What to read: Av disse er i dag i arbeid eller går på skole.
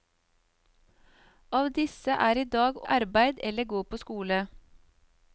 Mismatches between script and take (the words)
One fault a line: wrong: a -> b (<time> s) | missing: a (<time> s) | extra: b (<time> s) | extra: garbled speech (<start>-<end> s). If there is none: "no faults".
no faults